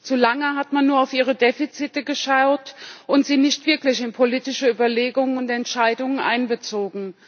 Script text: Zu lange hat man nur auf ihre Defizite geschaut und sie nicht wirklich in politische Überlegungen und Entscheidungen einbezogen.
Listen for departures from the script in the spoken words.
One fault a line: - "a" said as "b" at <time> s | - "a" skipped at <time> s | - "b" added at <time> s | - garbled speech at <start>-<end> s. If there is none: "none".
none